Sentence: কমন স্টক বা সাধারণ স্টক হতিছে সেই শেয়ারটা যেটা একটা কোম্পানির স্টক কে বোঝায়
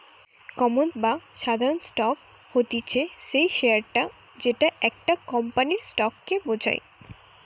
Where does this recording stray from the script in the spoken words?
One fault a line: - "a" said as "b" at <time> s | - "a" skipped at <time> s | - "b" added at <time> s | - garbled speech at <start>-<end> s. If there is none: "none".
- "স্টক" skipped at 0.9 s